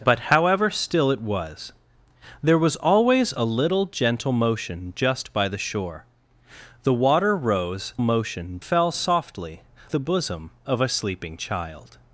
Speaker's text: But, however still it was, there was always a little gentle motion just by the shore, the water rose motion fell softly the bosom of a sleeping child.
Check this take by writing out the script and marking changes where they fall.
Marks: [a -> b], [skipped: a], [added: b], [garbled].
But, however still it was, there was always a little gentle motion just by the shore, the water rose motion fell softly the bosom of a sleeping child.